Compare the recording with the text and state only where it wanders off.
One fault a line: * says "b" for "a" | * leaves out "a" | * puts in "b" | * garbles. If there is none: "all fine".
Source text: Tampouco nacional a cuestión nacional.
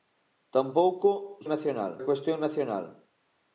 all fine